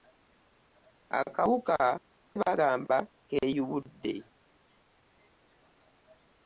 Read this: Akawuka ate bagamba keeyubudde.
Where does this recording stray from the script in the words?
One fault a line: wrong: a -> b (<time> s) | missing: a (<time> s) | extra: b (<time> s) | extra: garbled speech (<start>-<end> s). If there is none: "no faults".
missing: ate (1.8 s)